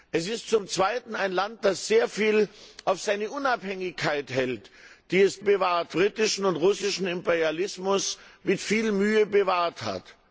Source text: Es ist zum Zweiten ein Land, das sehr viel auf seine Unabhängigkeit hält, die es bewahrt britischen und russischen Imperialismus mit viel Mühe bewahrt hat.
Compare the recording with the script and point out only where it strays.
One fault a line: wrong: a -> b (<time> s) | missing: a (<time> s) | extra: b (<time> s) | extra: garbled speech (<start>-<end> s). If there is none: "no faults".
no faults